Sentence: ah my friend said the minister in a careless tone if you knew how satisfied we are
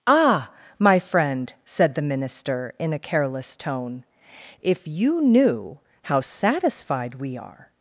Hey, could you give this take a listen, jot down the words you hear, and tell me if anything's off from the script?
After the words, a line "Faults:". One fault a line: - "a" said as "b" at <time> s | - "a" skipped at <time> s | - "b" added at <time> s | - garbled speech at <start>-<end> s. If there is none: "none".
ah my friend said the minister in a careless tone if you knew how satisfied we are
Faults:
none